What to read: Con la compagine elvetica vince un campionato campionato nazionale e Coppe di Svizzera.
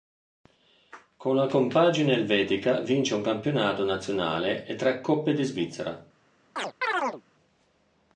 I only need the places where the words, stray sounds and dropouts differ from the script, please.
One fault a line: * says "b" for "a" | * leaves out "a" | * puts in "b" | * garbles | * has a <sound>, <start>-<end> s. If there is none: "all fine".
* leaves out "campionato"
* puts in "tre"
* has a chirp, 6.6-7.2 s